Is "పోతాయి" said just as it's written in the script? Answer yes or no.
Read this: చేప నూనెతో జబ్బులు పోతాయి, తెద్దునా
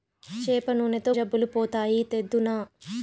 yes